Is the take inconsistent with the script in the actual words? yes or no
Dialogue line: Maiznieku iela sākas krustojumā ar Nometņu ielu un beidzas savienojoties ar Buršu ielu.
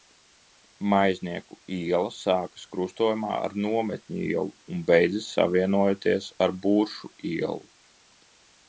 no